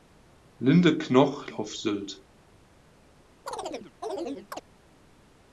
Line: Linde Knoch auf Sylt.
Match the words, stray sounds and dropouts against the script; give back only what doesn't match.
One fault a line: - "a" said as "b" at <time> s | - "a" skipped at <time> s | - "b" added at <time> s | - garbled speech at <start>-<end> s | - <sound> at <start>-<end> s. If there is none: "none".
- chirp at 3.5-4.6 s